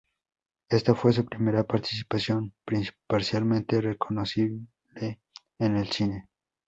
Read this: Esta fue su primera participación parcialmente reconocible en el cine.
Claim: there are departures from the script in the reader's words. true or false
false